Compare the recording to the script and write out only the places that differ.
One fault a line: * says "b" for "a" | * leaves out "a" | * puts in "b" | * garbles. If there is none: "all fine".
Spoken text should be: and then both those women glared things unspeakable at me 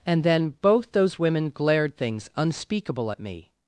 all fine